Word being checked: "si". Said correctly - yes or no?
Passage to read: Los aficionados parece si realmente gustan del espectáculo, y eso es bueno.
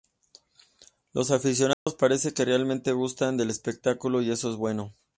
no